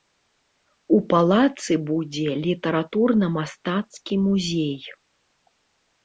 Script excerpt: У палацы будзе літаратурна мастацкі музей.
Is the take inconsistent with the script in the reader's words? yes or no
no